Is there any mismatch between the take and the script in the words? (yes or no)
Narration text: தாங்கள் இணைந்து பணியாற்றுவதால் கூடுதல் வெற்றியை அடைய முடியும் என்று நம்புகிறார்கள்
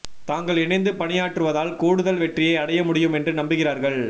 no